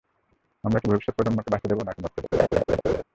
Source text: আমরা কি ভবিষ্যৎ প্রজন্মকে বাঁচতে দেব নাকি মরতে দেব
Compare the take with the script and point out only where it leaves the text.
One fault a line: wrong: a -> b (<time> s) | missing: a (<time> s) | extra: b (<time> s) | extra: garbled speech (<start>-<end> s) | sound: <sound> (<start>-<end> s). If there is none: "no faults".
sound: laugh (2.3-3.0 s)